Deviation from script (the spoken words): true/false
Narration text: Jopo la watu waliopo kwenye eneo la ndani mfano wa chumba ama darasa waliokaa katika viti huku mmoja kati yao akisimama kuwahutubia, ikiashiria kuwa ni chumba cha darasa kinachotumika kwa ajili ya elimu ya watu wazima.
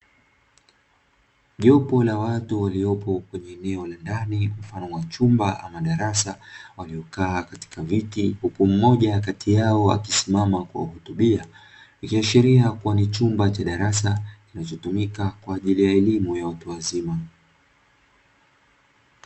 false